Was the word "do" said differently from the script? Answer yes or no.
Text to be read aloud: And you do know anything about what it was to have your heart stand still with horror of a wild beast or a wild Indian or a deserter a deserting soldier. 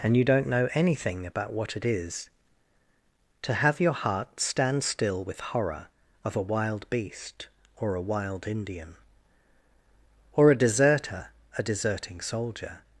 yes